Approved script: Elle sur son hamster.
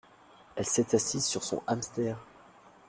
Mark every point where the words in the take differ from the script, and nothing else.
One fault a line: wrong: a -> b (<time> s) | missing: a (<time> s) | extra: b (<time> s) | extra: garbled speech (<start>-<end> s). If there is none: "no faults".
extra: s'est assise (0.7 s)